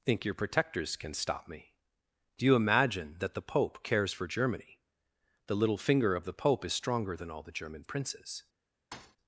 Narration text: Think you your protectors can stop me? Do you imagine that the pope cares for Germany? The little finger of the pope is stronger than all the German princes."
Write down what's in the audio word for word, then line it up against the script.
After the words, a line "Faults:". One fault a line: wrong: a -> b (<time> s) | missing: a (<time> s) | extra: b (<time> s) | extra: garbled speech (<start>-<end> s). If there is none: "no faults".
Think your protectors can stop me? Do you imagine that the pope cares for Germany? The little finger of the pope is stronger than all the German princes."
Faults:
missing: you (0.2 s)